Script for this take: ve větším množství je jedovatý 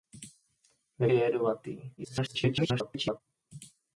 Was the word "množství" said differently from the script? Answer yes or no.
yes